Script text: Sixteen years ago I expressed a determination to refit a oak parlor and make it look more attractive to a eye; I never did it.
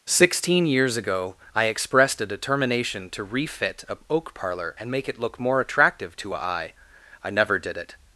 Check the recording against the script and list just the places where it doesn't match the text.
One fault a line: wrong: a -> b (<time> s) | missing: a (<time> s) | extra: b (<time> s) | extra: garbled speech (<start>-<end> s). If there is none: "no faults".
no faults